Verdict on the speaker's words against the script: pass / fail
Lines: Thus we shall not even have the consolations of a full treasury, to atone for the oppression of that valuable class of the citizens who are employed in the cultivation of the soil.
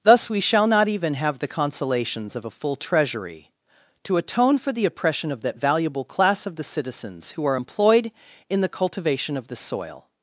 pass